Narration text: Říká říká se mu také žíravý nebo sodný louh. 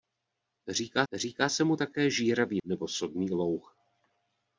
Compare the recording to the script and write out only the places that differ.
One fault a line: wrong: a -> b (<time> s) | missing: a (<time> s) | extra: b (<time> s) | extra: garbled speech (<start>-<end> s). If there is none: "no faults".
no faults